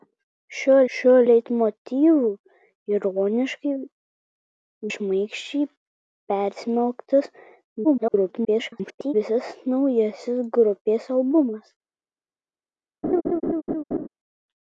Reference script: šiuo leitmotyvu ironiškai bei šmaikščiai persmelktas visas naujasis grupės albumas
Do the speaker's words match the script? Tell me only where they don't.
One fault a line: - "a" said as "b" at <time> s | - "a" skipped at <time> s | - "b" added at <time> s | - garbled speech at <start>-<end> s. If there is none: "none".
- "šiuo" added at 1.0 s
- "bei" skipped at 3.7 s
- garbled speech at 7.8-9.1 s